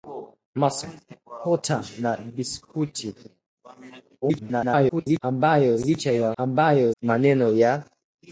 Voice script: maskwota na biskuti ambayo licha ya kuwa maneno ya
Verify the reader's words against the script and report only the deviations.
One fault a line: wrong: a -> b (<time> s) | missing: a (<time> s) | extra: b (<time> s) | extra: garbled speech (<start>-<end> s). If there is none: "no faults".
extra: garbled speech (4.2-5.2 s)
wrong: kuwa -> ambayo (6.4 s)